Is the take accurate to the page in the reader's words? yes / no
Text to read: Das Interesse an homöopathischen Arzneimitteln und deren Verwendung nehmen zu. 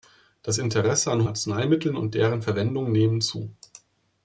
no